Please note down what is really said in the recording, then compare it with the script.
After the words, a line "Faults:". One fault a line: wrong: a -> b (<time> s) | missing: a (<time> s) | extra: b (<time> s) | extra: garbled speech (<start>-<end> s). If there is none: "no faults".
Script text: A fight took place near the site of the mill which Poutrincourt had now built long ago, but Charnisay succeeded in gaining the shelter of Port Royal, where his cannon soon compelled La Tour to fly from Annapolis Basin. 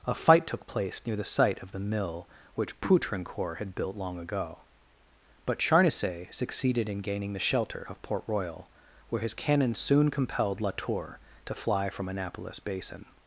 A fight took place near the site of the mill which Poutrincourt had built long ago, but Charnisay succeeded in gaining the shelter of Port Royal, where his cannon soon compelled La Tour to fly from Annapolis Basin.
Faults:
missing: now (3.8 s)